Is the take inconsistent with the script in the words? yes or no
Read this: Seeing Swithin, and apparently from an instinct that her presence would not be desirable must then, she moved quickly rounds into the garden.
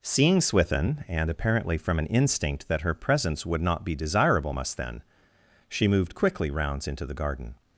no